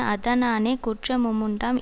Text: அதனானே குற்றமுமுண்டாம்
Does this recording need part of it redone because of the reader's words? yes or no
no